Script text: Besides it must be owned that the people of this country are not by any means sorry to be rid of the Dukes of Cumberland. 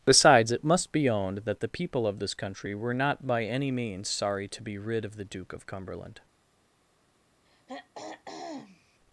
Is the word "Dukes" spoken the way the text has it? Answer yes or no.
no